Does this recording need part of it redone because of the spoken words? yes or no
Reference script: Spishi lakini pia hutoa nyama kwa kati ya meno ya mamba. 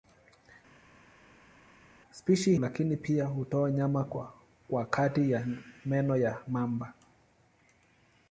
no